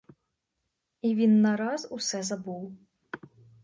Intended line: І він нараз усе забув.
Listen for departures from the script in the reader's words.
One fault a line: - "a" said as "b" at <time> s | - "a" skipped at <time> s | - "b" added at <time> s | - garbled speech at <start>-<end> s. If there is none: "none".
none